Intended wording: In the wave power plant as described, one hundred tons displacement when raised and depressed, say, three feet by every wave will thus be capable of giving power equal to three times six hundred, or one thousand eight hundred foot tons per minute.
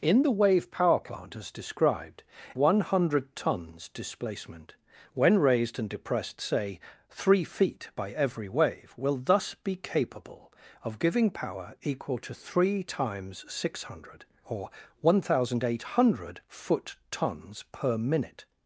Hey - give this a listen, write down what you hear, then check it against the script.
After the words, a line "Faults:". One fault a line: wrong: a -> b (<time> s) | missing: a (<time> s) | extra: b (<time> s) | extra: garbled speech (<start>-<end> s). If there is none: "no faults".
In the wave power plant as described, one hundred tons displacement when raised and depressed, say, three feet by every wave will thus be capable of giving power equal to three times six hundred, or one thousand eight hundred foot tons per minute.
Faults:
no faults